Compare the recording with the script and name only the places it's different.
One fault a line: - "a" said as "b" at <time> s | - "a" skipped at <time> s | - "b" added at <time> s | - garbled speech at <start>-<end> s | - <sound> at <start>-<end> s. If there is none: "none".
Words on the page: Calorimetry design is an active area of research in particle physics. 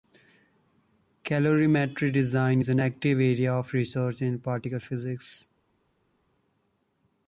none